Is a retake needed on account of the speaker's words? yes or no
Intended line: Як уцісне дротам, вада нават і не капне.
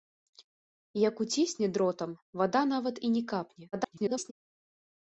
yes